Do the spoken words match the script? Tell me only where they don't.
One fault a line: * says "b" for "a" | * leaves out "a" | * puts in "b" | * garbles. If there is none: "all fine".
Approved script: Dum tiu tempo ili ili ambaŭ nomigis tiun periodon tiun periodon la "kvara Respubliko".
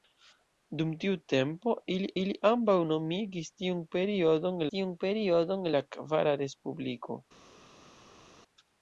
all fine